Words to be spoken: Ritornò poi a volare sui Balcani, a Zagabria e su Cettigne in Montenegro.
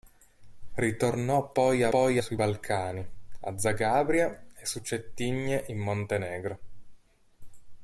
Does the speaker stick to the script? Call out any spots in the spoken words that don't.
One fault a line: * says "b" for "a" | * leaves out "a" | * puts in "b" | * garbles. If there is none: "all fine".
* says "poi" for "volare"